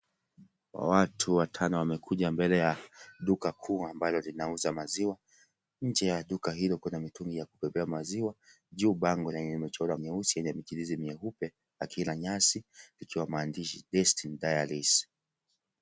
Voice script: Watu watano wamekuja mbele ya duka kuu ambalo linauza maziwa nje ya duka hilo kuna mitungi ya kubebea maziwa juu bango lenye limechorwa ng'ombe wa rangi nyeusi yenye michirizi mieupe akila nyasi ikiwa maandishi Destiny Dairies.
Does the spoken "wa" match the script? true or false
false